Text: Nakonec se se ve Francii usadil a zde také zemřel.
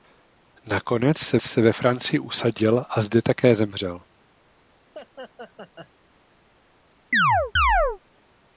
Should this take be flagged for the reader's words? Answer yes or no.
no